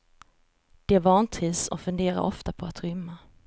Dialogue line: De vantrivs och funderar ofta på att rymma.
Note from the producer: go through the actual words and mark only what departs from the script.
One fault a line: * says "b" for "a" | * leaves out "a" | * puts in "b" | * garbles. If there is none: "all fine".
all fine